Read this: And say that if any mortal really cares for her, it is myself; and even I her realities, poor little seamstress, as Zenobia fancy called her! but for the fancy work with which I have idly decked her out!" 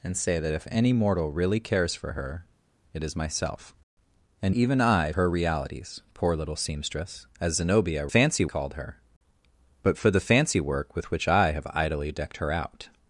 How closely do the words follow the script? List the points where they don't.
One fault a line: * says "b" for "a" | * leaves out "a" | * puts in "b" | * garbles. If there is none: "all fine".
all fine